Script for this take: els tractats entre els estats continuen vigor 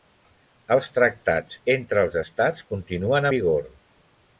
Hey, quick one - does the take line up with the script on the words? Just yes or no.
yes